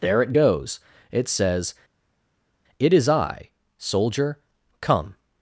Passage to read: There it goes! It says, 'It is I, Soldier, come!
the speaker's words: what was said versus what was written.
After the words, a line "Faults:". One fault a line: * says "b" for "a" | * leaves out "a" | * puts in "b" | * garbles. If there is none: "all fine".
There it goes! It says, 'It is I, Soldier, come!
Faults:
all fine